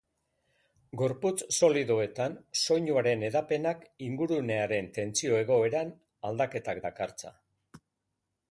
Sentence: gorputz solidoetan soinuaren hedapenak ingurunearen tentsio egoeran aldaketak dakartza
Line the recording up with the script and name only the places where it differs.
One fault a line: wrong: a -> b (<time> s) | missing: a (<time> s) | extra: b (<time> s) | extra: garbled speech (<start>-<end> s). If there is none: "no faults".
no faults